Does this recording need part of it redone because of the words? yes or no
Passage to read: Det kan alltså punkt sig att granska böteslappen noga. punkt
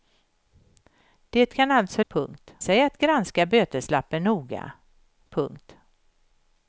no